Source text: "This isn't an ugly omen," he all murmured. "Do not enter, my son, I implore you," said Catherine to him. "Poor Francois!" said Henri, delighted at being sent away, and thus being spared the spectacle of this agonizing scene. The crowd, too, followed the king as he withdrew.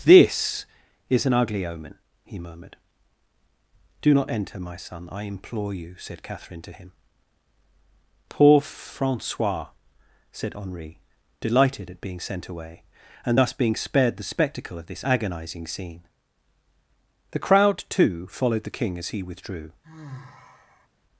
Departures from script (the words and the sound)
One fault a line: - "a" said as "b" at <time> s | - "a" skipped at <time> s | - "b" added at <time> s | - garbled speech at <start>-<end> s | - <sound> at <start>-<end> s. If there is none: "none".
- "isn't" said as "is" at 1.1 s
- "all" skipped at 2.4 s
- sigh at 19.8-20.9 s